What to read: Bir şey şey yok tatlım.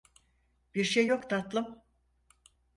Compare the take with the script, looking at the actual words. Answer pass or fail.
fail